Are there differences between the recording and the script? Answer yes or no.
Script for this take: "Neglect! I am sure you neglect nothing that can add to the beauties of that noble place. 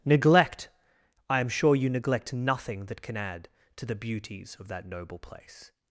no